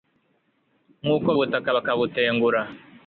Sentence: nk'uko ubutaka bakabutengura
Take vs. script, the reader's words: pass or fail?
pass